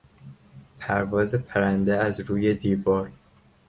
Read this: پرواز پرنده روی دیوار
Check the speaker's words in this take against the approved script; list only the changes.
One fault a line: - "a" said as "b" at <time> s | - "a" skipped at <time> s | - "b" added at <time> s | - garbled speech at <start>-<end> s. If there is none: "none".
- "از" added at 2.0 s